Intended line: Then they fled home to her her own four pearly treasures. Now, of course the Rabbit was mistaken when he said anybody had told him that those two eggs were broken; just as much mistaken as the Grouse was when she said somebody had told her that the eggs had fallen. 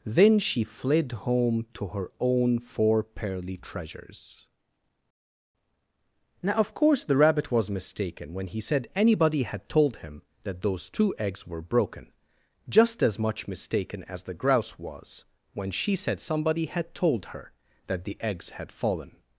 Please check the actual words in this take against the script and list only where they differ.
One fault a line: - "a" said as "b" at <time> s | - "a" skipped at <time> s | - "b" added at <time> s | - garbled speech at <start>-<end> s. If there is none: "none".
- "they" said as "she" at 0.4 s
- "her" skipped at 2.1 s